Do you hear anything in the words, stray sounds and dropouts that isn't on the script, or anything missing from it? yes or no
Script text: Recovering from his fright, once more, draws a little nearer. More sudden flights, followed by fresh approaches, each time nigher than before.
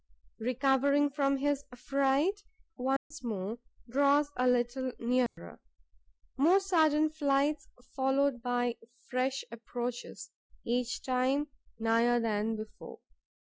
yes